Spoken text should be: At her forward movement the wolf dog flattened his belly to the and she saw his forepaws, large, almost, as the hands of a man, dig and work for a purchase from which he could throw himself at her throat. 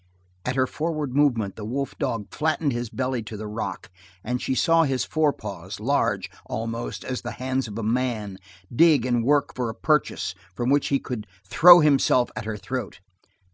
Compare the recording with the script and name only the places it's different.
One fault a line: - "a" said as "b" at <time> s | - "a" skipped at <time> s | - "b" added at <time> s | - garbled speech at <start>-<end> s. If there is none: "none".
- "rock" added at 3.5 s